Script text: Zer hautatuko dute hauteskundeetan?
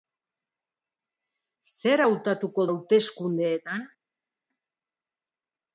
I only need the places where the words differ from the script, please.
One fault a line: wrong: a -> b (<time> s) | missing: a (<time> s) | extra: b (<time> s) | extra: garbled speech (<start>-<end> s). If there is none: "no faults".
missing: dute (2.7 s)